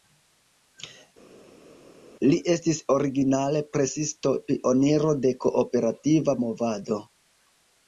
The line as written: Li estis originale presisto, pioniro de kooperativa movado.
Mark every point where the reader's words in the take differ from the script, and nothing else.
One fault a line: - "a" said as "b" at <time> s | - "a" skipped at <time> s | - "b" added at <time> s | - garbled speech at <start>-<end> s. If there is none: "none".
none